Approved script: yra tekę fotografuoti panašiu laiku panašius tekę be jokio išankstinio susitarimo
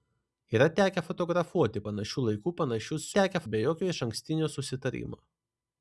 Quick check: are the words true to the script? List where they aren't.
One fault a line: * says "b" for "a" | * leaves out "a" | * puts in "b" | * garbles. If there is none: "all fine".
all fine